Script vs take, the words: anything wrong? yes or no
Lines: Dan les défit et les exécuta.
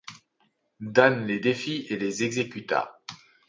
no